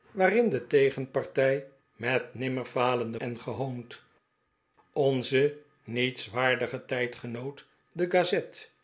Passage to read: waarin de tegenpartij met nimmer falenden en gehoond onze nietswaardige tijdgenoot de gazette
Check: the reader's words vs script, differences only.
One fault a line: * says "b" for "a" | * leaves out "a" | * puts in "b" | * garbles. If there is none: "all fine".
all fine